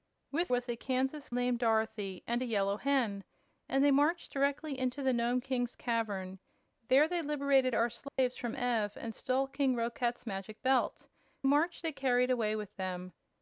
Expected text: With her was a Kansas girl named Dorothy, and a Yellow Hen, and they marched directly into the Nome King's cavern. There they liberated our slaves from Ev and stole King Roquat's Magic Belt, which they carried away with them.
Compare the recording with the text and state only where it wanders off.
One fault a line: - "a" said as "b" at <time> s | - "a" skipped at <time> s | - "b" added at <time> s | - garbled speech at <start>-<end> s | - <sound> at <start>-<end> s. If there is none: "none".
- "her" skipped at 0.5 s
- "girl" skipped at 1.3 s
- dropout at 8.1-8.2 s
- "which" said as "marched" at 11.4 s